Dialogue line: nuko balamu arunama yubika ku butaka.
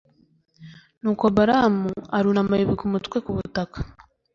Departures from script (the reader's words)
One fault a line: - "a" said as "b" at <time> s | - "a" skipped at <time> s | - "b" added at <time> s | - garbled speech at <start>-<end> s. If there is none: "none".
- "umutwe" added at 2.9 s